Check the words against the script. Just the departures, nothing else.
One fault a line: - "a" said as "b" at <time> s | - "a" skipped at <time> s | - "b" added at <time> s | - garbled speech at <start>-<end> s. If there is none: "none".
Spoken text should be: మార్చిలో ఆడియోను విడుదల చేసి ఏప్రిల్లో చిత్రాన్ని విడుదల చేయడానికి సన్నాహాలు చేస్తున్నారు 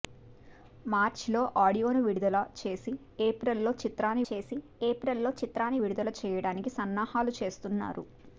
- "చేసి ఏప్రిల్లో చిత్రాన్ని" added at 4.3 s